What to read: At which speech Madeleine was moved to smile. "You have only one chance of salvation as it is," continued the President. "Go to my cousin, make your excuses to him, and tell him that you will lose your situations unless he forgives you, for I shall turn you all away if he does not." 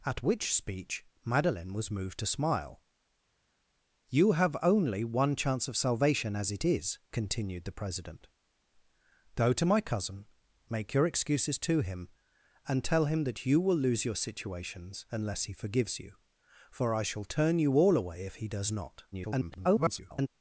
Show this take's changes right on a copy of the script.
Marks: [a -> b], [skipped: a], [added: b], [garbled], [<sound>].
At which speech Madeleine was moved to smile. "You have only one chance of salvation as it is," continued the President. "Go to my cousin, make your excuses to him, and tell him that you will lose your situations unless he forgives you, for I shall turn you all away if he does not." [garbled]